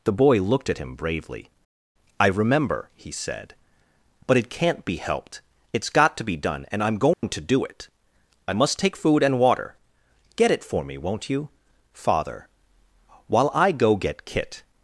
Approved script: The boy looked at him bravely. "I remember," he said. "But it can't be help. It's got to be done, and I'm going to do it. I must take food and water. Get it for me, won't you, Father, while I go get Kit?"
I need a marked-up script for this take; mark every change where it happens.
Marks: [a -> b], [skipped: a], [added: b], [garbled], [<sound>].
The boy looked at him bravely. "I remember," he said. "But it can't be [help. -> helped] It's got to be done, and I'm going [dropout] to do it. I must take food and water. Get it for me, won't you, Father, while I go get Kit?"